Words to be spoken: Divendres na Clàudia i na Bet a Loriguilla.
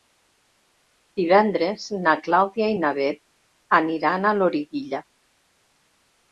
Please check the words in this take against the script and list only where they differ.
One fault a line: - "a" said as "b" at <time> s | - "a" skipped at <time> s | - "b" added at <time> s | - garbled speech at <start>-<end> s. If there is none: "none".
- "aniran" added at 3.8 s